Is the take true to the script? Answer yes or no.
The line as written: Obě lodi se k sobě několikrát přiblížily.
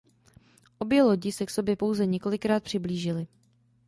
no